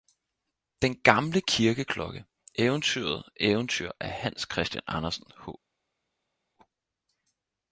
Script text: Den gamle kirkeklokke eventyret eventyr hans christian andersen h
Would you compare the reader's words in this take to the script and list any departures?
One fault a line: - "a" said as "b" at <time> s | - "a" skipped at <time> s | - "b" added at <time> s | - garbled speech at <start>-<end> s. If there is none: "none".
- "af" added at 4.0 s